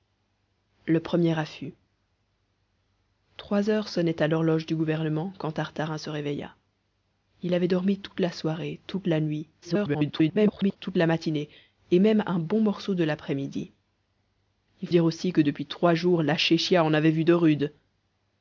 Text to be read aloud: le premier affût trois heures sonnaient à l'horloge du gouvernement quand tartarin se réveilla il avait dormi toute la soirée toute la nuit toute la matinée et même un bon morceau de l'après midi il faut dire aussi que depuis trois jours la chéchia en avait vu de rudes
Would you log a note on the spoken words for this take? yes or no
yes